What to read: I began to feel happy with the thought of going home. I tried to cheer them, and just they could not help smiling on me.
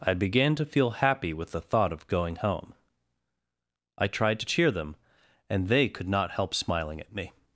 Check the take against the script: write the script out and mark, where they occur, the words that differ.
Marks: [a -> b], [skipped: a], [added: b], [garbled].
I began to feel happy with the thought of going home. I tried to cheer them, and [skipped: just] they could not help smiling [on -> at] me.